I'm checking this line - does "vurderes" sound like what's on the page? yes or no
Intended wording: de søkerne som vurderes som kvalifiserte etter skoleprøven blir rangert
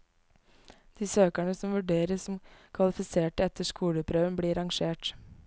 yes